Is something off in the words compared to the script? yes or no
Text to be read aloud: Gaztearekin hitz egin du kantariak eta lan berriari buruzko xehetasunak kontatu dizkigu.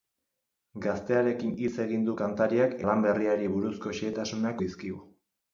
yes